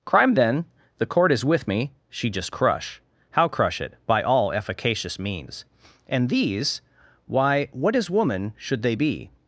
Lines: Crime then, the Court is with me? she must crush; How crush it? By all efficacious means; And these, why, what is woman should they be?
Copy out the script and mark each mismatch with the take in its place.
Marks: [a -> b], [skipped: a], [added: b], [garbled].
Crime then, the Court is with me? she [must -> just] crush; How crush it? By all efficacious means; And these, why, what is woman should they be?